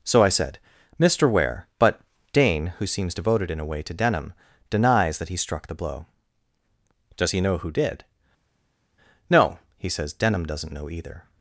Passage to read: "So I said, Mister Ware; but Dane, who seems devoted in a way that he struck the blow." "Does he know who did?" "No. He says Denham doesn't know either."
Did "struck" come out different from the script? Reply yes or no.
no